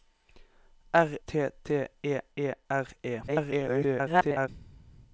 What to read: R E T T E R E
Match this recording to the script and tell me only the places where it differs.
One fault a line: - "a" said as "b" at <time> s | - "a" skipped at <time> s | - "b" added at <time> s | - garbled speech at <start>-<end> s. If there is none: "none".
- "E" said as "T" at 1.3 s
- "T" said as "E" at 2.0 s
- garbled speech at 3.3-4.5 s